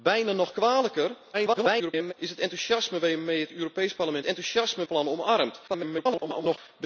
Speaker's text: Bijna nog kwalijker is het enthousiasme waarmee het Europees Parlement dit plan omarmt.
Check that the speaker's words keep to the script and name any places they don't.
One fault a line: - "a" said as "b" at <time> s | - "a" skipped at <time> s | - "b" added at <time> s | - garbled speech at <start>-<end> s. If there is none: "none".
- garbled speech at 1.3-2.1 s
- "dit" said as "enthousiasme" at 4.2 s
- garbled speech at 5.7-6.6 s